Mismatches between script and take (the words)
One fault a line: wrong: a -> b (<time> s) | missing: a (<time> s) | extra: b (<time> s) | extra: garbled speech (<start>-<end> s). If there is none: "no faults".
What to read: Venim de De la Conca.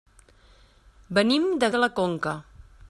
no faults